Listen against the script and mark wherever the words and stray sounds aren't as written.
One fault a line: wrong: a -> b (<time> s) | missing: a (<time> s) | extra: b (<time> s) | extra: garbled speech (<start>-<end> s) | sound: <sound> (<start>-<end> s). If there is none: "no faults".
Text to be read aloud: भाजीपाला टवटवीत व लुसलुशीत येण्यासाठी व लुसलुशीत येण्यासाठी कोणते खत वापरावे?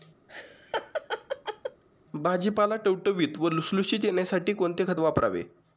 sound: laugh (0.3-1.8 s)
missing: व लुसलुशीत येण्यासाठी (4.5 s)